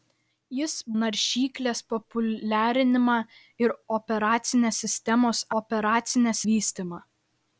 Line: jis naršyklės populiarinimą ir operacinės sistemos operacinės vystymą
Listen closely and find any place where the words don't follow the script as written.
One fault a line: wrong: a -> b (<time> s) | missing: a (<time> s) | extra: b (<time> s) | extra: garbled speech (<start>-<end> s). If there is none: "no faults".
no faults